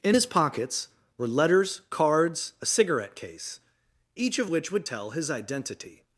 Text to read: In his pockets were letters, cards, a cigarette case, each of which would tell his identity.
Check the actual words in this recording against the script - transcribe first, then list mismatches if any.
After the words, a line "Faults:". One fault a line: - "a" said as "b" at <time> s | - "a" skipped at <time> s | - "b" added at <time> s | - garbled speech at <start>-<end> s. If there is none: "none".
In his pockets were letters, cards, a cigarette case, each of which would tell his identity.
Faults:
none